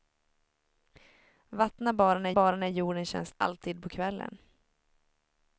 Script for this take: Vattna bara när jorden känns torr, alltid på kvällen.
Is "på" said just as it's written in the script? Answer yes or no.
yes